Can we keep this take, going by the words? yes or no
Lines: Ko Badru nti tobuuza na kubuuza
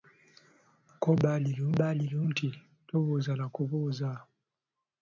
no